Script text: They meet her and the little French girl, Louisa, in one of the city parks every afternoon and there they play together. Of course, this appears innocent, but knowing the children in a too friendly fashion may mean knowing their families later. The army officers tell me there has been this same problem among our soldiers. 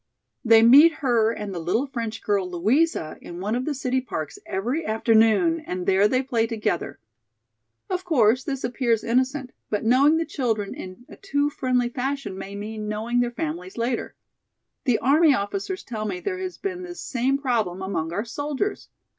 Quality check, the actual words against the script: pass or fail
pass